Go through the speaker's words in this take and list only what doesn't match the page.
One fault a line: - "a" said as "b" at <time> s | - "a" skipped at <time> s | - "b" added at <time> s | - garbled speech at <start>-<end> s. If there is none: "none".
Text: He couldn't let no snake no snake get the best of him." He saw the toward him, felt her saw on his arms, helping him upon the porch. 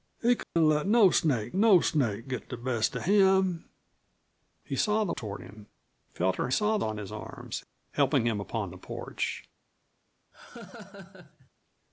none